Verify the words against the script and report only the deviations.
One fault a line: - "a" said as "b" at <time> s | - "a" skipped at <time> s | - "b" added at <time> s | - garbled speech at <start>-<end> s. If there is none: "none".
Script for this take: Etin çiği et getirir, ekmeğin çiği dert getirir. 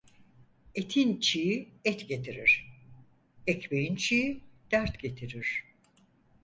none